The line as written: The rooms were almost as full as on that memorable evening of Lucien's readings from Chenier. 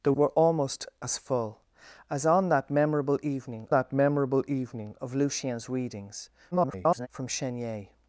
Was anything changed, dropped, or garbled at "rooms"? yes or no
yes